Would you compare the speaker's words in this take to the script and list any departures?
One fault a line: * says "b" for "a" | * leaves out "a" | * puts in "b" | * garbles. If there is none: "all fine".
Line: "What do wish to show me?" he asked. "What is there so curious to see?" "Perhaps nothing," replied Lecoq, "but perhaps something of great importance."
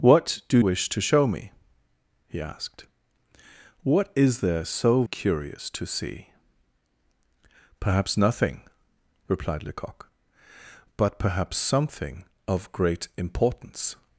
all fine